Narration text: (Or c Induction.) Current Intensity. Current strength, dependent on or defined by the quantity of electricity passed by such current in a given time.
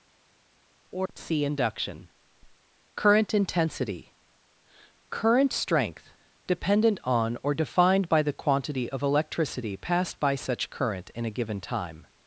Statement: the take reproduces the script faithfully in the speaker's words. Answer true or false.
true